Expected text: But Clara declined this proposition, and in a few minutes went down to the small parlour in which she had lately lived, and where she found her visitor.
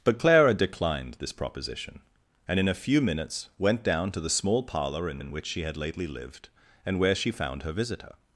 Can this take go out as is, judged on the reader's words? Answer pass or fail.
fail